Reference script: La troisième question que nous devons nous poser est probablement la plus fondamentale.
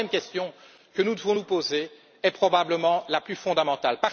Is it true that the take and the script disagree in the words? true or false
false